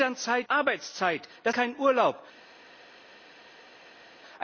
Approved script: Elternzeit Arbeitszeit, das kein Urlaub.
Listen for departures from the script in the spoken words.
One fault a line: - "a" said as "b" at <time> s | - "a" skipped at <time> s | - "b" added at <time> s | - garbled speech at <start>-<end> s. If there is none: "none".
none